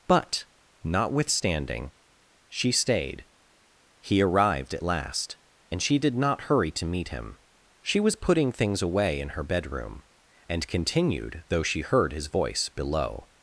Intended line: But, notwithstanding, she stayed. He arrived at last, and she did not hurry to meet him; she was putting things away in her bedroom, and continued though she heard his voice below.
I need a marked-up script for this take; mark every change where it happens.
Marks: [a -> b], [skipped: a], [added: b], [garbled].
But, notwithstanding, she stayed. He arrived at last, and she did not hurry to meet him; she was putting things away in her bedroom, and continued though she heard his voice below.